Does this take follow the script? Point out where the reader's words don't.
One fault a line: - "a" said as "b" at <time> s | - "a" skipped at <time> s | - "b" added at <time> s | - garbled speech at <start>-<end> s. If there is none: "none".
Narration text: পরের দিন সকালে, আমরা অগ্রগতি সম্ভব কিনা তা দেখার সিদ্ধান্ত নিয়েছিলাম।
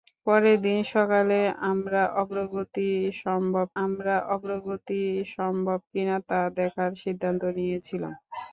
- "আমরা অগ্রগতি সম্ভব" added at 3.8 s